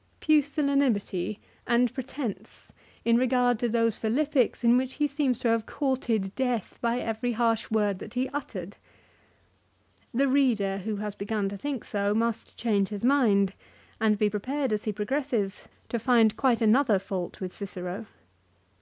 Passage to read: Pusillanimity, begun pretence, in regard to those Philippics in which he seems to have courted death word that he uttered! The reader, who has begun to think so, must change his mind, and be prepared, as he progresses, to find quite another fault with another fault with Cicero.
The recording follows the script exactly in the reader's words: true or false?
false